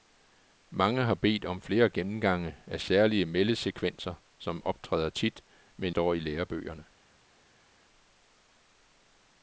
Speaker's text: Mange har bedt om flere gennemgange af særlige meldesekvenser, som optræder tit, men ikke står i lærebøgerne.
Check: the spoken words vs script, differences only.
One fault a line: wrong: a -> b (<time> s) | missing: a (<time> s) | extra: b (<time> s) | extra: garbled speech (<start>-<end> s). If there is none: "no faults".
missing: ikke (6.0 s)